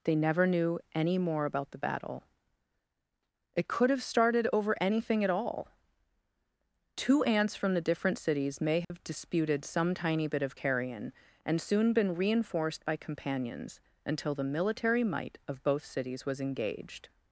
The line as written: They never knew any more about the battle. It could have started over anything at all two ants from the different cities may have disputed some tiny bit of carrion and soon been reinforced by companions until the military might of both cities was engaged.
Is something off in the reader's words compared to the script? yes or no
no